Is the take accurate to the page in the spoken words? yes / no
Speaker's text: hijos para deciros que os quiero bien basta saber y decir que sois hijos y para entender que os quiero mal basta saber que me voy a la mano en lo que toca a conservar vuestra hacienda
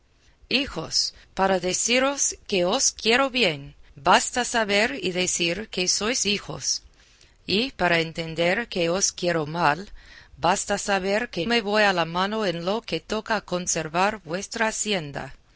yes